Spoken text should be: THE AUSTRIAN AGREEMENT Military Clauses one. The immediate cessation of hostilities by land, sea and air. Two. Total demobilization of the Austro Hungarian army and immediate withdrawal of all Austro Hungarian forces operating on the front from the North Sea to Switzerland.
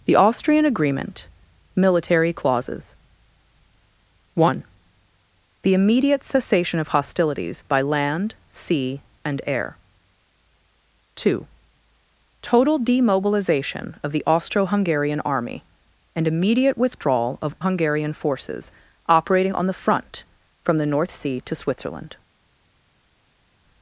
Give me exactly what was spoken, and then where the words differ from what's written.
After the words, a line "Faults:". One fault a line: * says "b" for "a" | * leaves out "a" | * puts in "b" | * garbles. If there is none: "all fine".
THE AUSTRIAN AGREEMENT Military Clauses one. The immediate cessation of hostilities by land, sea and air. Two. Total demobilization of the Austro Hungarian army and immediate withdrawal of Hungarian forces operating on the front from the North Sea to Switzerland.
Faults:
* leaves out "all Austro"